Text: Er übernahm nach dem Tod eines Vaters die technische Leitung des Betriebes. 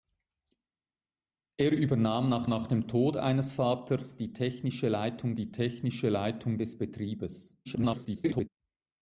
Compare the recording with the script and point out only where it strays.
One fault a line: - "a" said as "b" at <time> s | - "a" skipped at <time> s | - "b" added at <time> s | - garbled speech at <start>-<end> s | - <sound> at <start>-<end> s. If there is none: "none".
- "nach" added at 2.5 s
- "die technische Leitung" added at 5.3 s
- garbled speech at 7.6-8.5 s